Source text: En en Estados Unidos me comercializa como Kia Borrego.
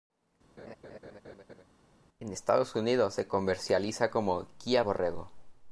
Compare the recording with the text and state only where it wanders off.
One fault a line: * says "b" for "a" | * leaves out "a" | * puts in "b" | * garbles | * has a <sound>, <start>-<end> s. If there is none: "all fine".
* has a laugh, 0.6-1.6 s
* leaves out "en"
* says "se" for "me"